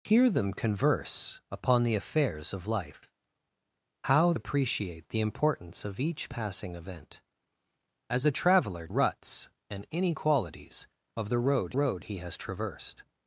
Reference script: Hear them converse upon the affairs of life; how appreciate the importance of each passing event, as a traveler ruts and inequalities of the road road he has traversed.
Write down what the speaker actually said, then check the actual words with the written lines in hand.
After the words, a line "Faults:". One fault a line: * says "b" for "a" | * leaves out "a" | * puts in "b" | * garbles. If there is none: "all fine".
Hear them converse upon the affairs of life; how appreciate the importance of each passing event, as a traveler ruts and inequalities of the road road he has traversed.
Faults:
all fine